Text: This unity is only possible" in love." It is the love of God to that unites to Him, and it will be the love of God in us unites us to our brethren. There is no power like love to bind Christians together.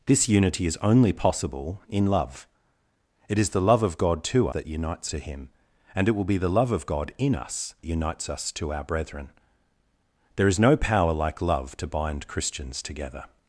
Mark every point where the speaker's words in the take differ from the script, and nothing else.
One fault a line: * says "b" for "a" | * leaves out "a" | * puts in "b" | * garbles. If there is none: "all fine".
all fine